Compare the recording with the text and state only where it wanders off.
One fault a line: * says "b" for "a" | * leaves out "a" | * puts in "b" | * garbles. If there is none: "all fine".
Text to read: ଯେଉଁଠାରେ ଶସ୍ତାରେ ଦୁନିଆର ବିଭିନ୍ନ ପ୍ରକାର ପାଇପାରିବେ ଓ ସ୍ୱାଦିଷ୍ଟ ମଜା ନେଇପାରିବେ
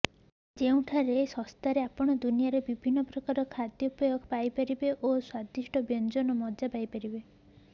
* puts in "ଆପଣ"
* puts in "ଖାଦ୍ୟପେୟ"
* puts in "ବ୍ୟଞ୍ଜନର"